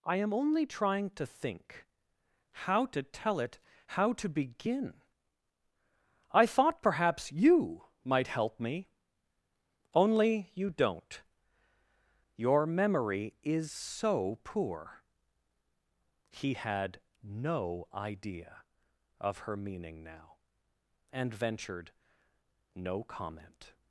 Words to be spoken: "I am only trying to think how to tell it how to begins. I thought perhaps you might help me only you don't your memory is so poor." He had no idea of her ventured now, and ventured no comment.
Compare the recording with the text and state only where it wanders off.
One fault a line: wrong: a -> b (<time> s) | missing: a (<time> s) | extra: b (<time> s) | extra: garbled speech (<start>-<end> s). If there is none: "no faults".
wrong: begins -> begin (4.3 s)
wrong: ventured -> meaning (19.6 s)